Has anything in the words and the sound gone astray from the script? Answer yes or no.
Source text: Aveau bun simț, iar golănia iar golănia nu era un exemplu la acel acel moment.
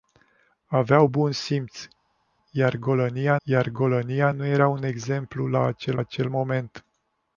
no